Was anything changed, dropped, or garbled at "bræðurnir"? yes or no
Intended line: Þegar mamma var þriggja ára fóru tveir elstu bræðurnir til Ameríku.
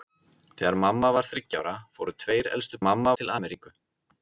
yes